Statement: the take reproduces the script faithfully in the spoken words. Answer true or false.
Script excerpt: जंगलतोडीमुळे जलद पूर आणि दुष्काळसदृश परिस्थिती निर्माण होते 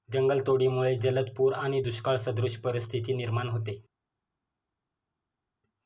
true